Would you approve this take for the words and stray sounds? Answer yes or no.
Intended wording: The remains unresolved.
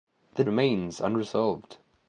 yes